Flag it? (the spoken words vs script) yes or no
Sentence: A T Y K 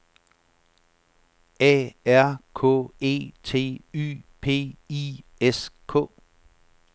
yes